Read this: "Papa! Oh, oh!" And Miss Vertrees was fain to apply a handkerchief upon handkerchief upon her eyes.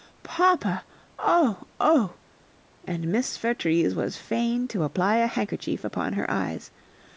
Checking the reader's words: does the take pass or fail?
fail